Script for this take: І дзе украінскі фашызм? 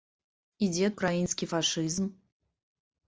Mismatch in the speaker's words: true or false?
false